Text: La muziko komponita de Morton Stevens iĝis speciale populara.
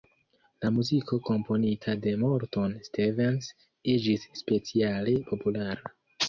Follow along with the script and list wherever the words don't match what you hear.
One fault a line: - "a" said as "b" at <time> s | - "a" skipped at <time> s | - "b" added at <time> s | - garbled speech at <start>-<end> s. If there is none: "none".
none